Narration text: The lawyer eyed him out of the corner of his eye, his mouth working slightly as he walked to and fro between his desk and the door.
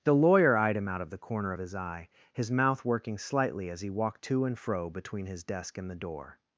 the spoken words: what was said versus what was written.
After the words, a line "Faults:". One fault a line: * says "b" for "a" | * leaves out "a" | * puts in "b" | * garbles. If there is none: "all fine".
The lawyer eyed him out of the corner of his eye, his mouth working slightly as he walked to and fro between his desk and the door.
Faults:
all fine